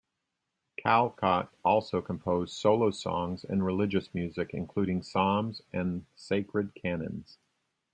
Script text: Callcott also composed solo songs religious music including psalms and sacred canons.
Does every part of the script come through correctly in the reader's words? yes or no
no